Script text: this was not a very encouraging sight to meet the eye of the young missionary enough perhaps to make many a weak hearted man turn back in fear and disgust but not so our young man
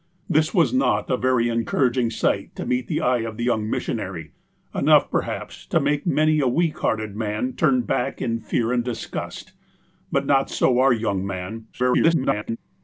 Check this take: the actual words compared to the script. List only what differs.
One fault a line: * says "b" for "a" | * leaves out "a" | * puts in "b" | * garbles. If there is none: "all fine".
* garbles